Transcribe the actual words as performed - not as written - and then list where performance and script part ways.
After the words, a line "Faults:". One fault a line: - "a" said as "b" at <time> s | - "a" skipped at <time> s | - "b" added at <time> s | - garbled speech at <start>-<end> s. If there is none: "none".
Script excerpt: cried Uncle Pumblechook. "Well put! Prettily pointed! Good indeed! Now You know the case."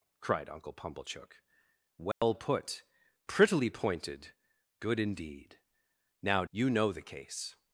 cried Uncle Pumblechook. "Well put! Prettily pointed! Good indeed! Now You know the case."
Faults:
none